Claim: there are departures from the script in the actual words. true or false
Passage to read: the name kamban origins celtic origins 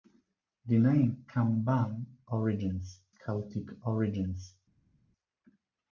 false